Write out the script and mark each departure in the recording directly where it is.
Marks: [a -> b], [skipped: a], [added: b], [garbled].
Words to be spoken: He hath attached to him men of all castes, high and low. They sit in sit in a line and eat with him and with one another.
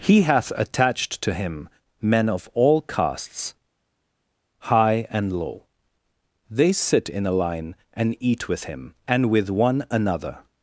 He hath attached to him men of all castes, high and low. They sit in [skipped: sit in] a line and eat with him and with one another.